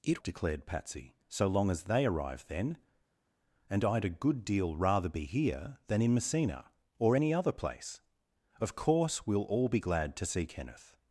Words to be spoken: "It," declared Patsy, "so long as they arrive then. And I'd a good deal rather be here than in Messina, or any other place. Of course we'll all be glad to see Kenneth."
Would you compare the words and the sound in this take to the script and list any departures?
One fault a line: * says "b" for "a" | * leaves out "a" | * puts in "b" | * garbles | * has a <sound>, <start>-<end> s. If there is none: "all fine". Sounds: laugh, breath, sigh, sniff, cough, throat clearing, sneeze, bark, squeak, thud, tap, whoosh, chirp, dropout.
all fine